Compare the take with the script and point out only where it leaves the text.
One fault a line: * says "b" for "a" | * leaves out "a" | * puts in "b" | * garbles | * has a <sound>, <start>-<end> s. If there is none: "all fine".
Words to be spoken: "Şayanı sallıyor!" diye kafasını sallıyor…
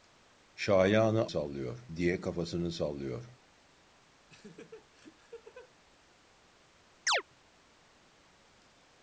* has a laugh, 4.3-5.7 s
* has a chirp, 7.1-7.2 s